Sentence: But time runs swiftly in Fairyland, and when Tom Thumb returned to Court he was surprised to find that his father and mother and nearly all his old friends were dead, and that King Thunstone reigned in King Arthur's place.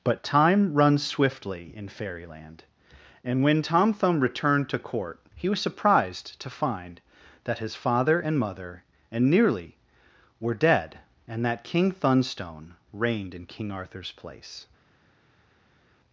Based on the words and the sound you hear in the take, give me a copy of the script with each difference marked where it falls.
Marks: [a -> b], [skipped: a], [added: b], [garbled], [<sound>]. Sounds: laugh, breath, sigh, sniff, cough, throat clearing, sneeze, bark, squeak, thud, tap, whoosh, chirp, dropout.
But time runs swiftly in Fairyland, and when Tom Thumb returned to Court he was surprised to find that his father and mother and nearly [skipped: all his old friends] were dead, and that King Thunstone reigned in King Arthur's place.